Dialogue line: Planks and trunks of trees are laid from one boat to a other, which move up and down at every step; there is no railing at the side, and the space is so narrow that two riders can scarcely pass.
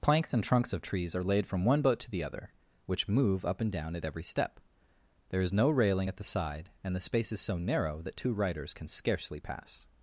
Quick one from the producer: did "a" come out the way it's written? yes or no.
no